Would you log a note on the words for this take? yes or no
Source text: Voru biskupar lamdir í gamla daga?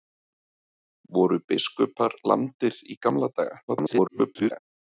yes